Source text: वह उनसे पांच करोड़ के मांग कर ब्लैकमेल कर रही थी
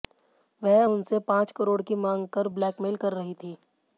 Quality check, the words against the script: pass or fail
fail